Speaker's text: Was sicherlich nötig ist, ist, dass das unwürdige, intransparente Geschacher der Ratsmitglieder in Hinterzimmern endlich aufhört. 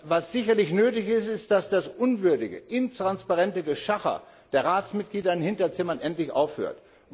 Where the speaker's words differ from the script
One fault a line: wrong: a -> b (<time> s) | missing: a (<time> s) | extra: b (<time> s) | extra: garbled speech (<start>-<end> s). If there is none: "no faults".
no faults